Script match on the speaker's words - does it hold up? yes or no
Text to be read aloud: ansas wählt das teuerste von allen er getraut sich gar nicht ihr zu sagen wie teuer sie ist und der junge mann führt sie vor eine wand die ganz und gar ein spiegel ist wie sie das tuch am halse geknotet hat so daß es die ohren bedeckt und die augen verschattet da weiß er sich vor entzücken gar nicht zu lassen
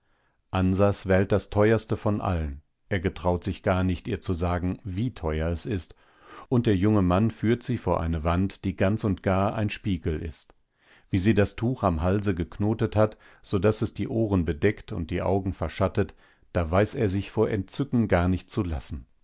no